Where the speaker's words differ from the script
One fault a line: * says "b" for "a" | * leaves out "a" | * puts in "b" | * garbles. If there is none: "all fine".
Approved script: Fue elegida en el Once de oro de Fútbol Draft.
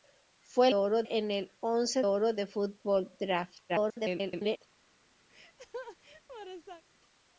* says "oro" for "elegida"
* leaves out "de"
* garbles